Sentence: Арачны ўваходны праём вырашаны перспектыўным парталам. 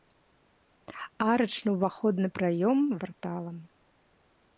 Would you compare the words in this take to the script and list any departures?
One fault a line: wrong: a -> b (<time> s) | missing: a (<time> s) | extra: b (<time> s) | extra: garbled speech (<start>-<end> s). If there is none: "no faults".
missing: вырашаны перспектыўным (2.8 s)